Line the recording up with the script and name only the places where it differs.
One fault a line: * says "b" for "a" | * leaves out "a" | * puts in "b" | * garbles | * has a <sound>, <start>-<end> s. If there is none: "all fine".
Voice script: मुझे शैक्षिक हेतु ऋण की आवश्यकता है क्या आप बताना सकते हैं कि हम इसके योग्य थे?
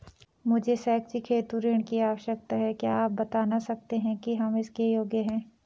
* says "हैं" for "थे"